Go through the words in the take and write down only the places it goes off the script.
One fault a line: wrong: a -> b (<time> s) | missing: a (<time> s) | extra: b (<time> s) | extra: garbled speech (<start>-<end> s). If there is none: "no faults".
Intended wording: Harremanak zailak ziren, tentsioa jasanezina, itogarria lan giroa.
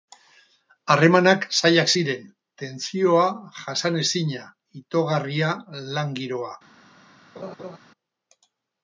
no faults